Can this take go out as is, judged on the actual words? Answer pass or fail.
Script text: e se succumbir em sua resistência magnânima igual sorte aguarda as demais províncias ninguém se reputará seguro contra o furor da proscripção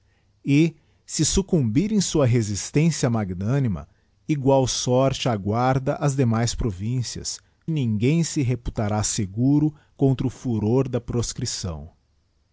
pass